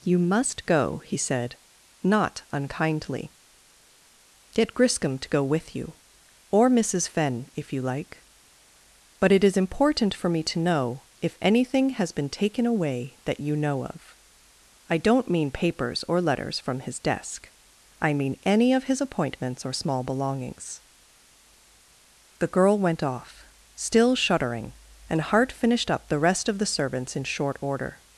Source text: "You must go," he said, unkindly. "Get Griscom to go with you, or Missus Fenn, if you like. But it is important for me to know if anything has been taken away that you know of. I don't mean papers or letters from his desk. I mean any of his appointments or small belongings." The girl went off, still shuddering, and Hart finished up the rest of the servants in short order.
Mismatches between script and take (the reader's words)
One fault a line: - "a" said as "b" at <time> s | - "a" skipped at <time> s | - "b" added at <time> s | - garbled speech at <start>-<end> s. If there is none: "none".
- "not" added at 2.0 s